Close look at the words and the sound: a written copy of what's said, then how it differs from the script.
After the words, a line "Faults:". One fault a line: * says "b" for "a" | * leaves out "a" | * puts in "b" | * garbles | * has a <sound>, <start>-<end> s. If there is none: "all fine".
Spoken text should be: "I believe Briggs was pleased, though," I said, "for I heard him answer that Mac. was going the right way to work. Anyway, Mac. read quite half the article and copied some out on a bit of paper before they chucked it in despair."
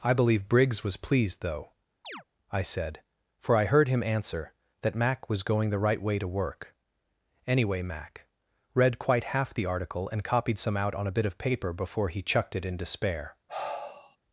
"I believe Briggs was pleased, though," I said, "for I heard him answer that Mac. was going the right way to work. Anyway, Mac. read quite half the article and copied some out on a bit of paper before he chucked it in despair."
Faults:
* has a chirp, 2.0-2.2 s
* says "he" for "they"
* has a sigh, 13.5-14.2 s